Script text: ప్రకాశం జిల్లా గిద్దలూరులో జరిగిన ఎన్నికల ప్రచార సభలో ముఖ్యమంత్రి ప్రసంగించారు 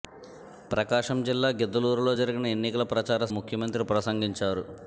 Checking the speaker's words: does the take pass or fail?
fail